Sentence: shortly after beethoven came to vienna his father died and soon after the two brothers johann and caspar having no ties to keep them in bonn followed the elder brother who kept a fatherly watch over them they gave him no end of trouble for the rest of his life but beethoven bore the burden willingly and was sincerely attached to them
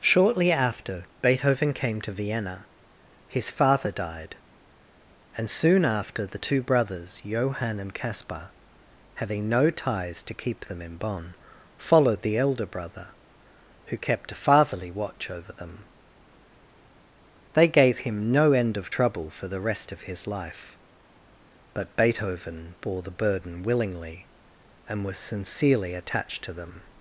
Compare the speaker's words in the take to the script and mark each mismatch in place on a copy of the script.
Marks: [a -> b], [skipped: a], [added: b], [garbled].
shortly after beethoven came to vienna his father died and soon after the two brothers johann and caspar having no ties to keep them in bonn followed the elder brother who kept a fatherly watch over them they gave him no end of trouble for the rest of his life but beethoven bore the burden willingly and was sincerely attached to them